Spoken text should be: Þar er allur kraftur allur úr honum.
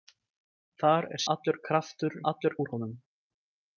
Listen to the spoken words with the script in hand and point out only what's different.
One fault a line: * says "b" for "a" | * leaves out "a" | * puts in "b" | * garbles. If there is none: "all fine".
all fine